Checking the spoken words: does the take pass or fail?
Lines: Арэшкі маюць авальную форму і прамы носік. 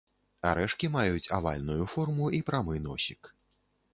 pass